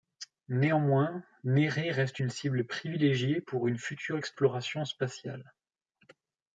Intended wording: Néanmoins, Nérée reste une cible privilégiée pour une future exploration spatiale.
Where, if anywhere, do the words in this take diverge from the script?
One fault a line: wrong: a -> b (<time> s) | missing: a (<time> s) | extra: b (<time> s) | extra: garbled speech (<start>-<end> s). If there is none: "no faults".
no faults